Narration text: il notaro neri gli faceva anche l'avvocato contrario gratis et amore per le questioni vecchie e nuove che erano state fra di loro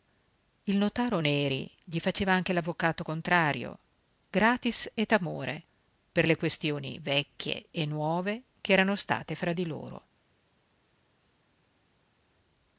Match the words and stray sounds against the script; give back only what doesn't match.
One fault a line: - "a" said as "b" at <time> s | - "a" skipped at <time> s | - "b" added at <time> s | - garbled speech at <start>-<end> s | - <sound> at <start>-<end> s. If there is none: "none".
none